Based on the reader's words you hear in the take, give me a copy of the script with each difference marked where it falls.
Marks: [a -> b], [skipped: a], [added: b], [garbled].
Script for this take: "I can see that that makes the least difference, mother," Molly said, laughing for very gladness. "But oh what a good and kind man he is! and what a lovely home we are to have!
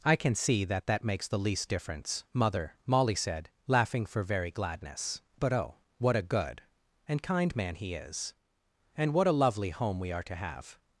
"I can see that that makes the least difference, mother," Molly said, laughing for very gladness. "But oh what a good and kind man he is! and what a lovely home we are to have!